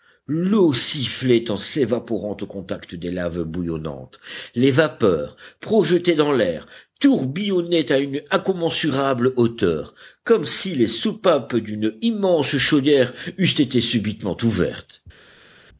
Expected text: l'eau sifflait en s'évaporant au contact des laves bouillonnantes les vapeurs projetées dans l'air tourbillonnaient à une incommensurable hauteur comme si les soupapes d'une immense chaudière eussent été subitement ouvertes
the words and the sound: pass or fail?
pass